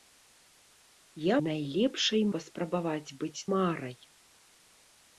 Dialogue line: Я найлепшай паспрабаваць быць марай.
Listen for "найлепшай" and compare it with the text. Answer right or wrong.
right